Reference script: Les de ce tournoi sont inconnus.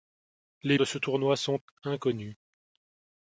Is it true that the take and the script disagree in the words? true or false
false